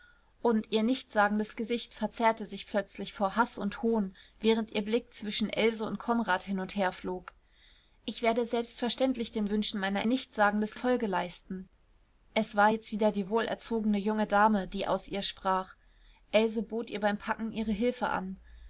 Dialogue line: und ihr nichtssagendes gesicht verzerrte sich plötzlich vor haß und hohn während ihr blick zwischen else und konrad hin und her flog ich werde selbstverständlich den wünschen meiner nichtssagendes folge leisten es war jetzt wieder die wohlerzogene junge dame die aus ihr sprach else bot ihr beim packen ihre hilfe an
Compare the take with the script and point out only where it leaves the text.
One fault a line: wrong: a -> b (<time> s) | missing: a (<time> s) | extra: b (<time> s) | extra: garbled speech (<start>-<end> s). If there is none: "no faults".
no faults